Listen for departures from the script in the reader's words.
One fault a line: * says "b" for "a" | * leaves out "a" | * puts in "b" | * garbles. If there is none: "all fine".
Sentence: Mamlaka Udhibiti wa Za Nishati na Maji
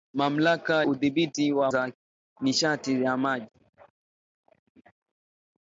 all fine